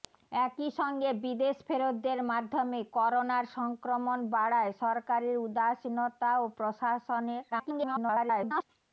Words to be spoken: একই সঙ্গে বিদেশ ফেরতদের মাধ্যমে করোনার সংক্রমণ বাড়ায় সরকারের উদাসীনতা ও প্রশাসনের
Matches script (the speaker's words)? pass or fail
fail